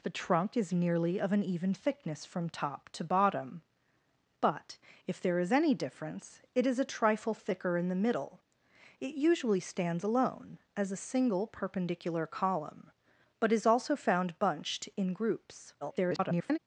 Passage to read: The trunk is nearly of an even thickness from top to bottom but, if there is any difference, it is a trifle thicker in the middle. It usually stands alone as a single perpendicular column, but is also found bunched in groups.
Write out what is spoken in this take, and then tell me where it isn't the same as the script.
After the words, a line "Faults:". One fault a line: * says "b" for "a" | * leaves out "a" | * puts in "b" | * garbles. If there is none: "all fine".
The trunk is nearly of an even thickness from top to bottom but, if there is any difference, it is a trifle thicker in the middle. It usually stands alone as a single perpendicular column, but is also found bunched in groups. [garbled]
Faults:
* garbles